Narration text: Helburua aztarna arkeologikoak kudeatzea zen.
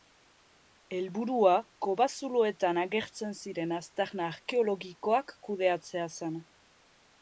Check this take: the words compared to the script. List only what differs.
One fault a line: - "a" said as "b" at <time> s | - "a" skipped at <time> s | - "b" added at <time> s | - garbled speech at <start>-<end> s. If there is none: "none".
- "kobazuloetan agertzen ziren" added at 1.9 s